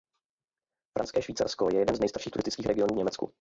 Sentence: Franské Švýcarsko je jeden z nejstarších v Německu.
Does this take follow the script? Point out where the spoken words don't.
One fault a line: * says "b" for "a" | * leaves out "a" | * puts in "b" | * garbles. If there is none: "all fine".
* puts in "turistických regionů"